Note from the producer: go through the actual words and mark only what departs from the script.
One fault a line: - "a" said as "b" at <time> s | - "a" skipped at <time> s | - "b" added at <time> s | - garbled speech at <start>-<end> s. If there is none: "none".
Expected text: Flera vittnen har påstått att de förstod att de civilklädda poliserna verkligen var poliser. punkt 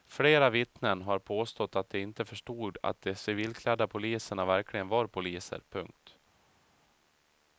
- "inte" added at 2.0 s